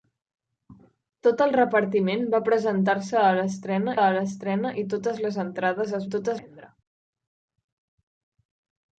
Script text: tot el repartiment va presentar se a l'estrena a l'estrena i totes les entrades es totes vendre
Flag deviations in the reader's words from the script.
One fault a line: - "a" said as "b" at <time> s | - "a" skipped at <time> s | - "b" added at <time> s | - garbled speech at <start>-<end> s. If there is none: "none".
none